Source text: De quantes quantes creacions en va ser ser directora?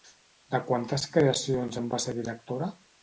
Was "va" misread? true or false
false